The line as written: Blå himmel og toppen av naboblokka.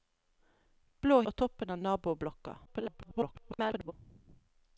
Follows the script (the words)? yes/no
no